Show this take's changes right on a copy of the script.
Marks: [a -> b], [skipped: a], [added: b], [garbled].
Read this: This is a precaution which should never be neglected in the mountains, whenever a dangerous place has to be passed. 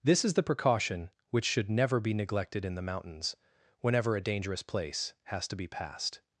This is [a -> the] precaution which should never be neglected in the mountains, whenever a dangerous place has to be passed.